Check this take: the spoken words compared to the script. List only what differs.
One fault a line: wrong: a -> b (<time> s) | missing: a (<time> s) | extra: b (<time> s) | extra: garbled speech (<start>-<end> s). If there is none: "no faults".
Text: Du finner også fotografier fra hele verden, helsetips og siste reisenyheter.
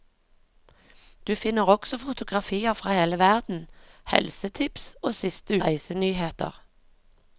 no faults